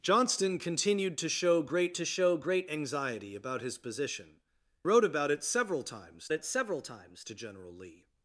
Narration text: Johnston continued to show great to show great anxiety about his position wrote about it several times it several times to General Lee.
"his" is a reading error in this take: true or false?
false